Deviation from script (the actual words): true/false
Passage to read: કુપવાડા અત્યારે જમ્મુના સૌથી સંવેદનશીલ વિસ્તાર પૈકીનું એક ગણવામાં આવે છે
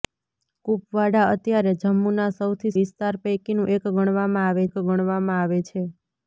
true